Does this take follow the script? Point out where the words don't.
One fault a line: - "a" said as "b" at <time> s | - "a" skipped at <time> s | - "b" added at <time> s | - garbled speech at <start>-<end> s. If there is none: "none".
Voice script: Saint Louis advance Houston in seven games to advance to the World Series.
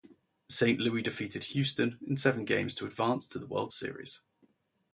- "advance" said as "defeated" at 1.0 s